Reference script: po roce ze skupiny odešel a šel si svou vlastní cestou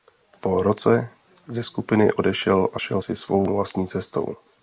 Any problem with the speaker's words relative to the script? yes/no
no